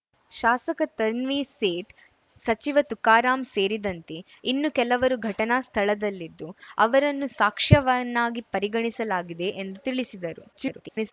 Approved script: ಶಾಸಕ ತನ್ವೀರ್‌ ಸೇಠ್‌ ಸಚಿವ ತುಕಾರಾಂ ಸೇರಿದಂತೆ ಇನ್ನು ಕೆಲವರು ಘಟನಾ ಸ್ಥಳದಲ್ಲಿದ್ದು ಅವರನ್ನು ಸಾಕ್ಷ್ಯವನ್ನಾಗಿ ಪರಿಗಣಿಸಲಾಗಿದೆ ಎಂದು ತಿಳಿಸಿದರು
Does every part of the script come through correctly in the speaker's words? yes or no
no